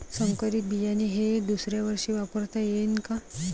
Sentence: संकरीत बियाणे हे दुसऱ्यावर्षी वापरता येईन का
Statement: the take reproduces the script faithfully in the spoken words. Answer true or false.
true